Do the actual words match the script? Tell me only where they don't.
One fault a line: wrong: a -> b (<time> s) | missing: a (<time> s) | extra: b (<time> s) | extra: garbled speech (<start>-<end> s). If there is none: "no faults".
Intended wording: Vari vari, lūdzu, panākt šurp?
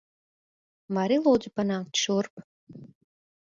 missing: vari (1.2 s)